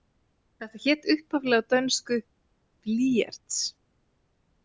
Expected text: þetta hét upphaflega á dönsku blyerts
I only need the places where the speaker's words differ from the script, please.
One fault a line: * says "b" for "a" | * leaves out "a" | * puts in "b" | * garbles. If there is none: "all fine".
all fine